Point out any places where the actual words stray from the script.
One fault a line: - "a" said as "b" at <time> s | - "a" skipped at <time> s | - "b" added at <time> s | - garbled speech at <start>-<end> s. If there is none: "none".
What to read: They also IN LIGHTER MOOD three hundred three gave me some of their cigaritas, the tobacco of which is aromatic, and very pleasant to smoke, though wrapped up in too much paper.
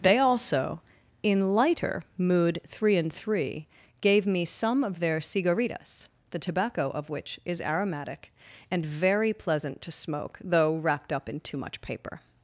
- "hundred" said as "and" at 3.0 s